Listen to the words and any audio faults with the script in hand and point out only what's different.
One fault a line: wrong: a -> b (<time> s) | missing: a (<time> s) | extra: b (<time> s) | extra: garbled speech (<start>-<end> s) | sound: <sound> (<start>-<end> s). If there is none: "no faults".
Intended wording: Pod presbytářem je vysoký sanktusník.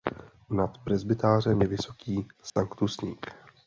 wrong: Pod -> Nad (0.5 s)
sound: dropout (2.5-2.6 s)